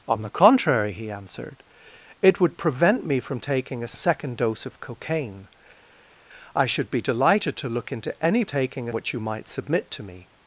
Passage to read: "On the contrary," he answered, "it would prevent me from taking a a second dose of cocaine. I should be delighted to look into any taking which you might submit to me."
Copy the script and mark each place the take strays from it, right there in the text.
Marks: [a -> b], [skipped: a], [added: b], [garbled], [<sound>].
"On the contrary," he answered, "it would prevent me from taking a a second dose of cocaine. I should be delighted to look into any taking which you might submit to me."